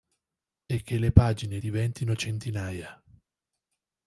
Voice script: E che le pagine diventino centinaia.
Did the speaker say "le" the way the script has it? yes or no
yes